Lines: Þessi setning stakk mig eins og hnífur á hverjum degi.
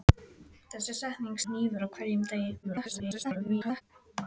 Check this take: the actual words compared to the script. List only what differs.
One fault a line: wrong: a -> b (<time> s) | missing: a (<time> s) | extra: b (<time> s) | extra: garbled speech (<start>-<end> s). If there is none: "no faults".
missing: stakk mig eins (1.4 s)
extra: garbled speech (2.6-3.8 s)